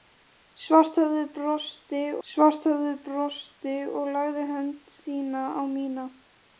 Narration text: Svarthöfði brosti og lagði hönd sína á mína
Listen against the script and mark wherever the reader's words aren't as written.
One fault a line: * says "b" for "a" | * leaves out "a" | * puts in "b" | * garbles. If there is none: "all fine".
* puts in "svarthöfði brosti"